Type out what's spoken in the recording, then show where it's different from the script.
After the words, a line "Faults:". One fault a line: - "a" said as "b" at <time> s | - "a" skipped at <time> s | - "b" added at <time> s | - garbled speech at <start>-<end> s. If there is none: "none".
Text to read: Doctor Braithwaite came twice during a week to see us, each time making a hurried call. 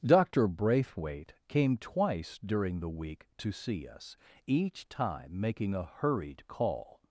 Doctor Braithwaite came twice during the week to see us, each time making a hurried call.
Faults:
- "a" said as "the" at 2.8 s